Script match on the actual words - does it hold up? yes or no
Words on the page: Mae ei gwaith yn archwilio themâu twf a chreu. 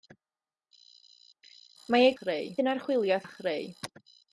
no